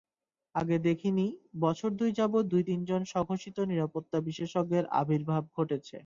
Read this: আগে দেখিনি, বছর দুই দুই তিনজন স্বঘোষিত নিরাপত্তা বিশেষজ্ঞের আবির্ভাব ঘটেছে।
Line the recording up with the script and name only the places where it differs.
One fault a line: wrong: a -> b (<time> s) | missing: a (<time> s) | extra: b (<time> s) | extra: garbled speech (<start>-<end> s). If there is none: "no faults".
extra: যাবৎ (2.2 s)